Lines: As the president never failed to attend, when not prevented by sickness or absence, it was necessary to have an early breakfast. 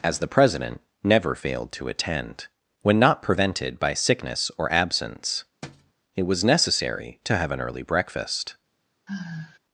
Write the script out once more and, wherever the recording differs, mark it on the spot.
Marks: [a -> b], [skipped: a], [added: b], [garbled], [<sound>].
As the president never failed to attend, when not prevented by sickness or absence, [thud] it was necessary to have an early breakfast. [sigh]